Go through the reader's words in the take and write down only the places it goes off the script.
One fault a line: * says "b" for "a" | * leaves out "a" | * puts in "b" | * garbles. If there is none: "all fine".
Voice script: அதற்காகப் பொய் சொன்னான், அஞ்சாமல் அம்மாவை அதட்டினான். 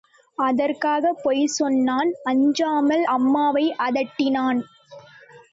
all fine